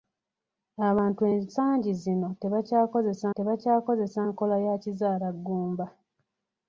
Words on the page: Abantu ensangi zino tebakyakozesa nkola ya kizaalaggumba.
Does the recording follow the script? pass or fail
fail